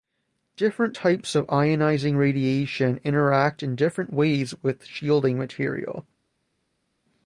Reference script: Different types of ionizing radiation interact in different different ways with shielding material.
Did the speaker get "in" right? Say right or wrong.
right